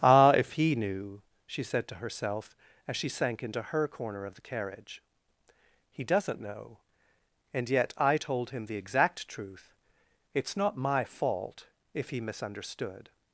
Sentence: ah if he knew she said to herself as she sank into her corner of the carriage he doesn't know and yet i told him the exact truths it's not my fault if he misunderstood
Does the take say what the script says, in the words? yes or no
no